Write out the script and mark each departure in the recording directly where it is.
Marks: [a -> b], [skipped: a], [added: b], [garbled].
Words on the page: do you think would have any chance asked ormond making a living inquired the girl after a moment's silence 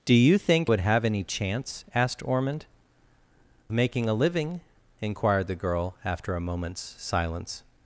do you think would have any chance asked ormond making a living inquired the girl after a moment's silence